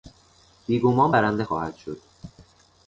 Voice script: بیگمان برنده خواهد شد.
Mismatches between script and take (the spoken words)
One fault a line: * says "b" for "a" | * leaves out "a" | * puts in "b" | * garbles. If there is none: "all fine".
all fine